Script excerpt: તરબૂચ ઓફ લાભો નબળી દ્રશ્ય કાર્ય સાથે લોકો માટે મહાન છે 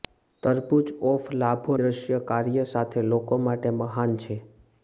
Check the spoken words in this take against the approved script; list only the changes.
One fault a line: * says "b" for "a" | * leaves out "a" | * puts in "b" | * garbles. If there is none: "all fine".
* leaves out "નબળી"